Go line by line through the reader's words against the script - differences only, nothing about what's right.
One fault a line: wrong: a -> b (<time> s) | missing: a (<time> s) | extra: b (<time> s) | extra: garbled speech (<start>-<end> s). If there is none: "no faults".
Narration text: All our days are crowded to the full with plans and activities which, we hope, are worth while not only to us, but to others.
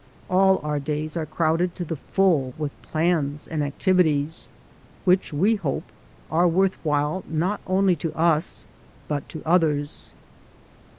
no faults